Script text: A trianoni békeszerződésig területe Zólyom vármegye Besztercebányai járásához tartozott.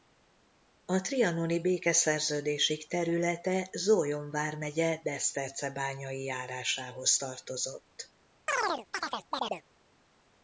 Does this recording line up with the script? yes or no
yes